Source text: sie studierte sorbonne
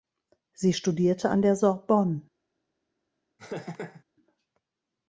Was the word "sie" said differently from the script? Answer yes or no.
no